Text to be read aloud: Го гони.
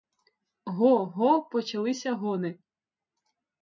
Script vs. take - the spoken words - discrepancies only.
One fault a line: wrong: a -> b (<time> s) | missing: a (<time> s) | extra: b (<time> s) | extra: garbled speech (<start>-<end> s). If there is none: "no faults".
extra: го почалися (1.1 s)